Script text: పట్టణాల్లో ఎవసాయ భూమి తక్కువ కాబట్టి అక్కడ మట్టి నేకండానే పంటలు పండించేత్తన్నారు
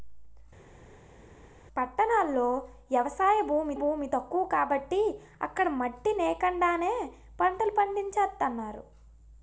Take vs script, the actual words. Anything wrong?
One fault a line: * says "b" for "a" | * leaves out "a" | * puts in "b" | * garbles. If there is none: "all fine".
* puts in "భూమి"